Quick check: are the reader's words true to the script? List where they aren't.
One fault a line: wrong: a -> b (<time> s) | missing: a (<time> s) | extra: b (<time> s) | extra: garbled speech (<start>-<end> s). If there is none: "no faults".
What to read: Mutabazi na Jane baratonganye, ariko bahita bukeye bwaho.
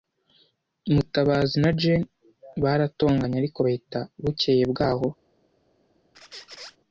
no faults